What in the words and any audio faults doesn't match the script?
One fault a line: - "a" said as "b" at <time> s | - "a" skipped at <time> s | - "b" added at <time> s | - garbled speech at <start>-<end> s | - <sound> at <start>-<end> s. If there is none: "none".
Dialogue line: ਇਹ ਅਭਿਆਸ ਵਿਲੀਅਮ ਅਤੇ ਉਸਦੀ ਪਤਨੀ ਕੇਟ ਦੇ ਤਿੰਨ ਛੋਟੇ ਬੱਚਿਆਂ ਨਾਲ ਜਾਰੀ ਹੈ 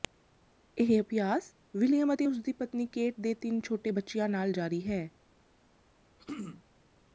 - throat clearing at 6.2-6.6 s